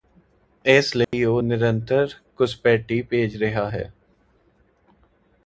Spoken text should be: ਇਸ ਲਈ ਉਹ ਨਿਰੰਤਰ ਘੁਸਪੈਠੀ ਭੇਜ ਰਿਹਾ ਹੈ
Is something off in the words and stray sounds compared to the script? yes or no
yes